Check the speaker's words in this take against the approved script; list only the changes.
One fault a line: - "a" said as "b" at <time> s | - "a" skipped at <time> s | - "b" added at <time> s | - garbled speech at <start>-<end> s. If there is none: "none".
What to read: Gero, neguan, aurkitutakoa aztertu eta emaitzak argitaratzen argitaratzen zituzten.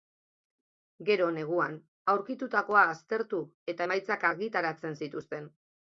- "argitaratzen" skipped at 5.0 s